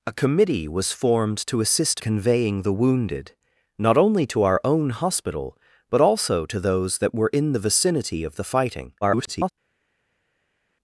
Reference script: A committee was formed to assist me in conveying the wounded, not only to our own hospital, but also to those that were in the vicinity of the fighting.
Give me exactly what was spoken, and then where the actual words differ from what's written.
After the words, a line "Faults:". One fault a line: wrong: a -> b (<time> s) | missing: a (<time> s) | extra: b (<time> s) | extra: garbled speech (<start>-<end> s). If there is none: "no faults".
A committee was formed to assist conveying the wounded, not only to our own hospital, but also to those that were in the vicinity of the fighting. [garbled]
Faults:
missing: me in (2.0 s)
extra: garbled speech (9.0-9.5 s)